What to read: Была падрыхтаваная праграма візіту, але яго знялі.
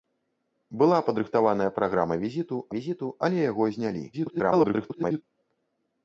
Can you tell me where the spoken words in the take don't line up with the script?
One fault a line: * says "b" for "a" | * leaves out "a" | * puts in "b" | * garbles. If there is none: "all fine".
* puts in "візіту"
* garbles